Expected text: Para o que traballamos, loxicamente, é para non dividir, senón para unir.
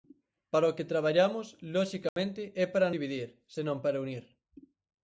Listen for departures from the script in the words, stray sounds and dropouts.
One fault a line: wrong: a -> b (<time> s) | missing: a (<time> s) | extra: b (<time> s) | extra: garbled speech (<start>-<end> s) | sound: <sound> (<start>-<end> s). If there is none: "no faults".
sound: dropout (2.1-2.2 s)
missing: non (2.9 s)